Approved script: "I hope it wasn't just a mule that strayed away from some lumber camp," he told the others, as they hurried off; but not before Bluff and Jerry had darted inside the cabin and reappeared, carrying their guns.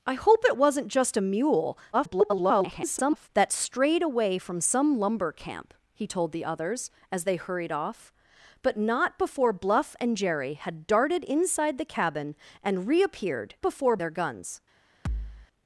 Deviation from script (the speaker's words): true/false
true